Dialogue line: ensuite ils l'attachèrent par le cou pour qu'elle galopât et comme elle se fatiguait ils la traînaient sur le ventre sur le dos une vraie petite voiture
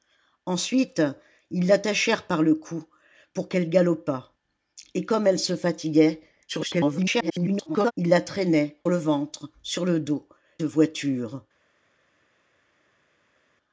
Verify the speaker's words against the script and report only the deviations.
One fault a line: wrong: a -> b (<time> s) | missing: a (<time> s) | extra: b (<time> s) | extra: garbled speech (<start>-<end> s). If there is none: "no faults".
extra: garbled speech (6.5-7.9 s)
missing: sur (8.8 s)
missing: une vraie petite (10.3 s)